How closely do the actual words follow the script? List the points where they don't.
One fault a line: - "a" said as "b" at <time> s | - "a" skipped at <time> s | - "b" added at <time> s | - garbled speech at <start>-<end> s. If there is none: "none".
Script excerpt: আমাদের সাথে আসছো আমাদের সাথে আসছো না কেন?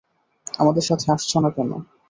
- "আমাদের সাথে আসছো" skipped at 1.4 s